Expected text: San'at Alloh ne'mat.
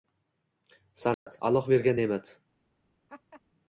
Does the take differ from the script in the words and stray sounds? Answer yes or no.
yes